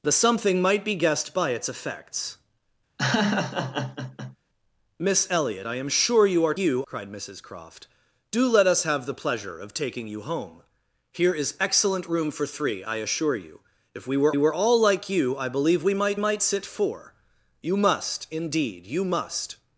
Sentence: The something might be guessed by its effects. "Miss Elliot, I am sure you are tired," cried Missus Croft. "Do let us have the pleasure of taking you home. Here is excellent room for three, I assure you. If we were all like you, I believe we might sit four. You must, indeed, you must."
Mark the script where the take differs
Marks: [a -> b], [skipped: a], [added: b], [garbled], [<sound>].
The something might be guessed by its effects. [laugh] "Miss Elliot, I am sure you are [tired," -> you] cried Missus Croft. "Do let us have the pleasure of taking you home. Here is excellent room for three, I assure you. If we were [added: were] all like you, I believe we might [added: might] sit four. You must, indeed, you must."